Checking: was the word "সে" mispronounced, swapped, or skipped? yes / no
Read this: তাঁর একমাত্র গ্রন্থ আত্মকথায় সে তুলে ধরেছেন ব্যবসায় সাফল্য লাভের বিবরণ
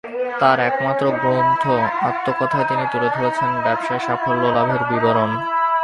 yes